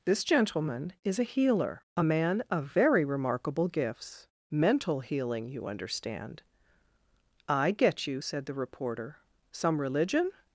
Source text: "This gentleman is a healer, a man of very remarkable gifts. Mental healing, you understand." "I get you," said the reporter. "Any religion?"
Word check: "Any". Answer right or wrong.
wrong